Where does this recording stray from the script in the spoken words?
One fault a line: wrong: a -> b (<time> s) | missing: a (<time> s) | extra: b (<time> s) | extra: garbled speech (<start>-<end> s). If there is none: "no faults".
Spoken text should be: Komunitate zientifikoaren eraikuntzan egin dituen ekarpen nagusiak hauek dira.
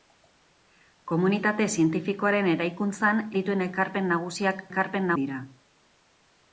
missing: egin (3.2 s)
wrong: hauek -> ekarpen (4.7 s)